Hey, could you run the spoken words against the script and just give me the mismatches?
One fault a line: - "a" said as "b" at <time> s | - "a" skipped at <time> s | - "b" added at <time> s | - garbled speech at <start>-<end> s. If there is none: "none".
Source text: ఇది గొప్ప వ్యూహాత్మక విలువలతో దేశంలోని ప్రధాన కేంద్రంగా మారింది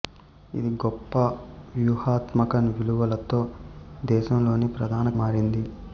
- "కేంద్రంగా" skipped at 5.1 s